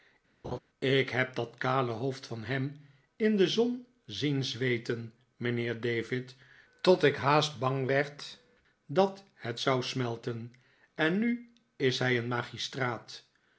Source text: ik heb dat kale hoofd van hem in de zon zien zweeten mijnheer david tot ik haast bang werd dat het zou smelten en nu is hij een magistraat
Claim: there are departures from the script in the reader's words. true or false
false